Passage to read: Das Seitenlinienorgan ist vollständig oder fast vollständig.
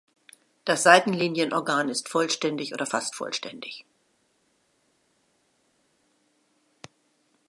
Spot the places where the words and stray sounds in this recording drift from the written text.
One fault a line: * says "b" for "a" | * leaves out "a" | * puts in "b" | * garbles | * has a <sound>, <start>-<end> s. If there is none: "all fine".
all fine